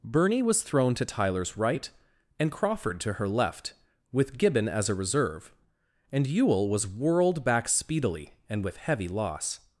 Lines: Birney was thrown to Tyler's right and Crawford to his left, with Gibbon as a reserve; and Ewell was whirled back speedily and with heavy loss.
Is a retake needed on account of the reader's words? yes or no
yes